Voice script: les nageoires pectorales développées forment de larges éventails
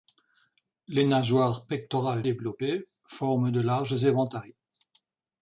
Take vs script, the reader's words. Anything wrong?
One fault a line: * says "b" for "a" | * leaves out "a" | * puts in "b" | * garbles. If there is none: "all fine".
all fine